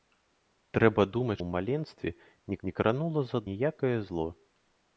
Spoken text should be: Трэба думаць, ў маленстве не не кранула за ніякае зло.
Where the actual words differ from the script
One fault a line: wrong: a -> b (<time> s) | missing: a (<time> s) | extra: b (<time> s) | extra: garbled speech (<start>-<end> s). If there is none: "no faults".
no faults